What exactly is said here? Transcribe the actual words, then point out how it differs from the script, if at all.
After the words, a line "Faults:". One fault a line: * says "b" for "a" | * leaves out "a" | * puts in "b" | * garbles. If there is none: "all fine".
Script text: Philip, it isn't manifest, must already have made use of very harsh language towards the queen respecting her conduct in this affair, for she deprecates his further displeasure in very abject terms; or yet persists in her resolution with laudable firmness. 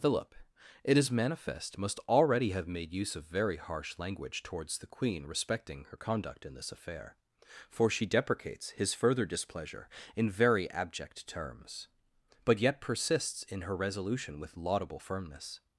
Philip, it is manifest, must already have made use of very harsh language towards the queen respecting her conduct in this affair, for she deprecates his further displeasure in very abject terms; but yet persists in her resolution with laudable firmness.
Faults:
* says "is" for "isn't"
* says "but" for "or"